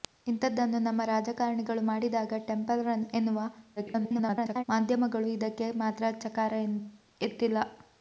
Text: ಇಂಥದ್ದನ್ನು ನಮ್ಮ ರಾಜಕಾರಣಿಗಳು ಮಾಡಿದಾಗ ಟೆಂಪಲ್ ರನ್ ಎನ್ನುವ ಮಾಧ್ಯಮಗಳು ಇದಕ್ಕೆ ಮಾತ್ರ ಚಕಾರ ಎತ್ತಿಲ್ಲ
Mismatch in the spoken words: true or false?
true